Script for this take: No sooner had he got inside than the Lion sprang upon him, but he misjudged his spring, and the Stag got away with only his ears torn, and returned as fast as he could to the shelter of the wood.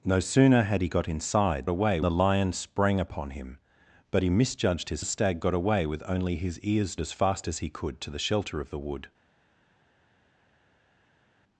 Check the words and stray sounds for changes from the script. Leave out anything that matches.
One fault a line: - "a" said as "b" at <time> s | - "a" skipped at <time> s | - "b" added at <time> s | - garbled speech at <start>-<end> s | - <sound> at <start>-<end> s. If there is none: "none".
- "than" said as "away" at 1.7 s
- "spring and" skipped at 5.0 s
- "torn and returned" skipped at 7.0 s